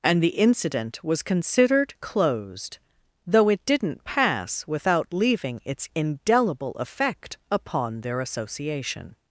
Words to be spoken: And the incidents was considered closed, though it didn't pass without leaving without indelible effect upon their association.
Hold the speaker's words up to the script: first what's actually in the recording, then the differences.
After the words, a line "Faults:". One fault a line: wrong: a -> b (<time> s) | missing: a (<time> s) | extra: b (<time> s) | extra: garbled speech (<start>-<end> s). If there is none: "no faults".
And the incident was considered closed, though it didn't pass without leaving its indelible effect upon their association.
Faults:
wrong: incidents -> incident (0.3 s)
wrong: without -> its (5.6 s)